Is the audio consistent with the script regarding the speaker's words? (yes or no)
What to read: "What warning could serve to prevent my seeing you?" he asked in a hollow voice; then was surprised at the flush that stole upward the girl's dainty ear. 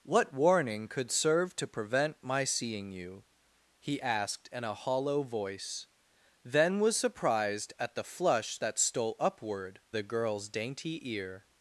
yes